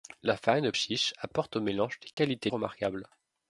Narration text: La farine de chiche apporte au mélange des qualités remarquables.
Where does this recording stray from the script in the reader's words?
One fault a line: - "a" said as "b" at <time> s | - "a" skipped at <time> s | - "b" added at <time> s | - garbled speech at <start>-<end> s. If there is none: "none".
none